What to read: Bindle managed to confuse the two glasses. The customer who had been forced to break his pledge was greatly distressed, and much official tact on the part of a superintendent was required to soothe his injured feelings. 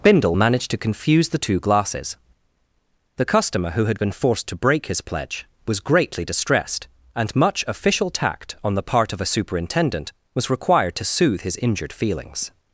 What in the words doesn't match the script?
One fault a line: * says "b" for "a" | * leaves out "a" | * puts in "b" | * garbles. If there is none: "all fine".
all fine